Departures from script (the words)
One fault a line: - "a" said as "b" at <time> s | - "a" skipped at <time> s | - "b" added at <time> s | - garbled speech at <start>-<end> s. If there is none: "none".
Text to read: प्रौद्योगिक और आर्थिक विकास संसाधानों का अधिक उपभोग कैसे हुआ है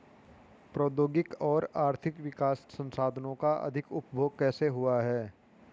none